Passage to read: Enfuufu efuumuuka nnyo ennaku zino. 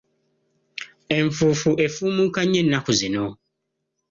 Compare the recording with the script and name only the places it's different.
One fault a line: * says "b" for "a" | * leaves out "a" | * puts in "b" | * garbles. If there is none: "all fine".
all fine